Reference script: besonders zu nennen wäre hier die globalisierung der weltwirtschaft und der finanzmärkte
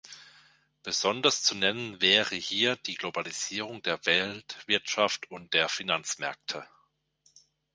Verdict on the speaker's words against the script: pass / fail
pass